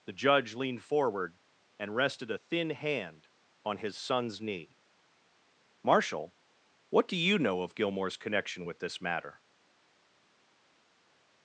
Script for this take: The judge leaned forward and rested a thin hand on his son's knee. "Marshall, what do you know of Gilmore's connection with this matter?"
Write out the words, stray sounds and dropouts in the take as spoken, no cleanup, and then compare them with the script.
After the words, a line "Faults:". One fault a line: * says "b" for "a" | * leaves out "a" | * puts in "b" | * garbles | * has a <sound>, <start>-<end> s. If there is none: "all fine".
The judge leaned forward and rested a thin hand on his son's knee. "Marshall, what do you know of Gilmore's connection with this matter?"
Faults:
all fine